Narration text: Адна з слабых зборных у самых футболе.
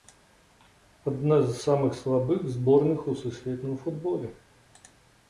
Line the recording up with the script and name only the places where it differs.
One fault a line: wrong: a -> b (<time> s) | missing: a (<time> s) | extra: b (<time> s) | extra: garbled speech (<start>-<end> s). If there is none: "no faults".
extra: самых (1.6 s)
wrong: самых -> сусветным (3.2 s)